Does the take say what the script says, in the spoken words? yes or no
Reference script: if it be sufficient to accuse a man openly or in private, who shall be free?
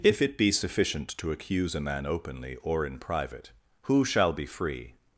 yes